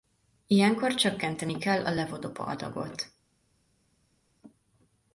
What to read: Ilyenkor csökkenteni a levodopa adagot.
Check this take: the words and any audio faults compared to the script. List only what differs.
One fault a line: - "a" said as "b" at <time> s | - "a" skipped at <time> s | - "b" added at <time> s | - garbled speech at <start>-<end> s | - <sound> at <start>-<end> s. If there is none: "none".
- "kell" added at 1.6 s